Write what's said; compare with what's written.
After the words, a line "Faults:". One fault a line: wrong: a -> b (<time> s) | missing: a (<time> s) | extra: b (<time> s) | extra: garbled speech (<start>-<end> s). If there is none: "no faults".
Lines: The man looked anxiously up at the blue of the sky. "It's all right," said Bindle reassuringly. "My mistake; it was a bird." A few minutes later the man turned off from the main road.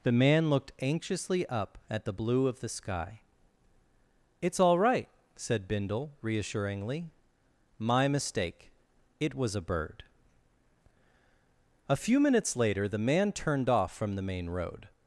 The man looked anxiously up at the blue of the sky. "It's all right," said Bindle reassuringly. "My mistake; it was a bird." A few minutes later the man turned off from the main road.
Faults:
no faults